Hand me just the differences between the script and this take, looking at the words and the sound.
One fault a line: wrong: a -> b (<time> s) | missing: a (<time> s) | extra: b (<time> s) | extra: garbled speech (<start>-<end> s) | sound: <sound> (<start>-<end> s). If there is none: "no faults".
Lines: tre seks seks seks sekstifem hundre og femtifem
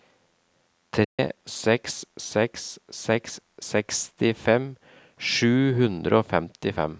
sound: dropout (1.0-1.2 s)
extra: sju (5.2 s)